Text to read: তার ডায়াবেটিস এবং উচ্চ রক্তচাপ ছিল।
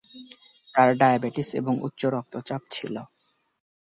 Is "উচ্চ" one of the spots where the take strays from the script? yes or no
no